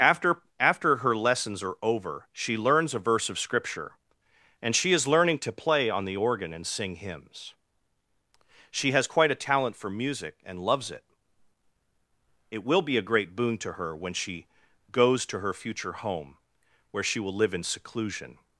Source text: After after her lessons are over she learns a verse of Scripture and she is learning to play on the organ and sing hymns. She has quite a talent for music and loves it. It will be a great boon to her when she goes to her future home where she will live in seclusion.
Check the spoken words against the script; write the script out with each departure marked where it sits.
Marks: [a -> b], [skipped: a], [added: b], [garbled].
After after her lessons are over she learns a verse of Scripture and she is learning to play on the organ and sing hymns. She has quite a talent for music and loves it. It will be a great boon to her when she goes to her future home where she will live in seclusion.